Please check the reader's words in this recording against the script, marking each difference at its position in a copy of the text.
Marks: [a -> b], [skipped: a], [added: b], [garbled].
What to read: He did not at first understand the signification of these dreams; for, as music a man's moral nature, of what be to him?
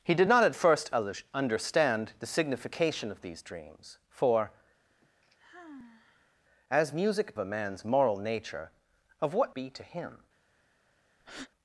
He did not at first understand the signification of these dreams; for, as music a man's moral nature, of what be to him?